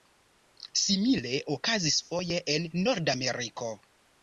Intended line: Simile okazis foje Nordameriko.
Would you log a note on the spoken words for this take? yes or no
yes